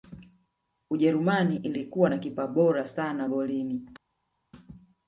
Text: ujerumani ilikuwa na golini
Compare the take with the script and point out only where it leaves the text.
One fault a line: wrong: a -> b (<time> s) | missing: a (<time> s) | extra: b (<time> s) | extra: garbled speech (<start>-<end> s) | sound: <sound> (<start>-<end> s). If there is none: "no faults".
extra: kipa bora sana (2.2 s)